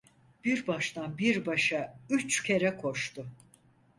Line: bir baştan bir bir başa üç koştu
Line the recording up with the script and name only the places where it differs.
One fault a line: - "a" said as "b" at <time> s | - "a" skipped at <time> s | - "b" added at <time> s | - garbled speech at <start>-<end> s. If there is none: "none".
- "bir" skipped at 1.4 s
- "kere" added at 2.4 s